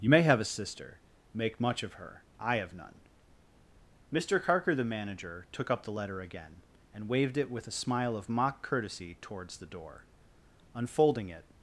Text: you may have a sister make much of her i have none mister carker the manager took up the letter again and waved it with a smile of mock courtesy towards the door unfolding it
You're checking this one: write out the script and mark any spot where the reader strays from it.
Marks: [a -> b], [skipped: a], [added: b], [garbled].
you may have a sister make much of her i have none mister carker the manager took up the letter again and waved it with a smile of mock courtesy towards the door unfolding it